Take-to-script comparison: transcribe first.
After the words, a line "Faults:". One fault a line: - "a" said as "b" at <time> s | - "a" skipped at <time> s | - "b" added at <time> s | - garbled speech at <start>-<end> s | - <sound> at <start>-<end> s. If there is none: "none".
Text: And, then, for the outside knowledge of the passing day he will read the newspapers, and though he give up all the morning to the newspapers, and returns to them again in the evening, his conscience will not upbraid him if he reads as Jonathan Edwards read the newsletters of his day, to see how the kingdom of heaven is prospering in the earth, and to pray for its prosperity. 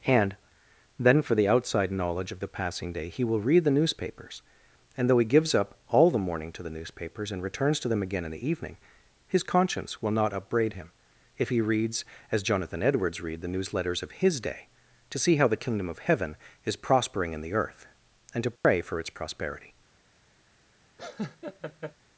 And, then, for the outside knowledge of the passing day he will read the newspapers, and though he gives up all the morning to the newspapers, and returns to them again in the evening, his conscience will not upbraid him if he reads as Jonathan Edwards read the newsletters of his day, to see how the kingdom of heaven is prospering in the earth, and to pray for its prosperity.
Faults:
- "give" said as "gives" at 5.2 s
- dropout at 18.6-18.6 s
- laugh at 21.0-22.0 s